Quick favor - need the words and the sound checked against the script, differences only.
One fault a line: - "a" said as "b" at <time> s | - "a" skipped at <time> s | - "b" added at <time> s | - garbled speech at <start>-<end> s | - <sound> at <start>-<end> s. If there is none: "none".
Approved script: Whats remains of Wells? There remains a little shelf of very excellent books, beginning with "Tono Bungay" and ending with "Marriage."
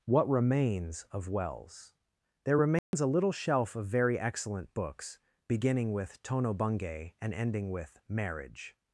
- "Whats" said as "What" at 0.1 s
- dropout at 2.8-2.9 s